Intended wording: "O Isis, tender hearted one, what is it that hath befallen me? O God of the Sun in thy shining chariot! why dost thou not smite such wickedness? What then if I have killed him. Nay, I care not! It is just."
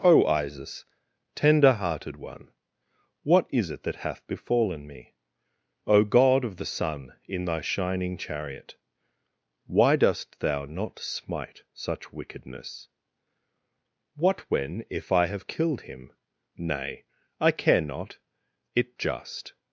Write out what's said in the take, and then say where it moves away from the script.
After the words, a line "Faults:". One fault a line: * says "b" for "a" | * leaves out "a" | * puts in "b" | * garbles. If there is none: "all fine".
"O Isis, tender hearted one, what is it that hath befallen me? O God of the Sun in thy shining chariot! why dost thou not smite such wickedness? What when if I have killed him. Nay, I care not! It just."
Faults:
* says "when" for "then"
* leaves out "is"